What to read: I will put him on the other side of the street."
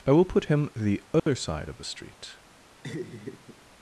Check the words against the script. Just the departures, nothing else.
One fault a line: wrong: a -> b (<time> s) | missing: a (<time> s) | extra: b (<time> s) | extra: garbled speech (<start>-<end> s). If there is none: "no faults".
missing: on (0.7 s)